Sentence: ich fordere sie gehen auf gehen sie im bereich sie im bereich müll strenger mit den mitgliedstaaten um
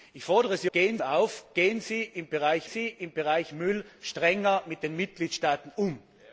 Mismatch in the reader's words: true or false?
false